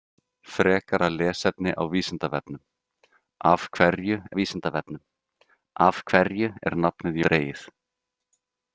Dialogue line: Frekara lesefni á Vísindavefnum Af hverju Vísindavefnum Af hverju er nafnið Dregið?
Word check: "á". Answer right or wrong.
right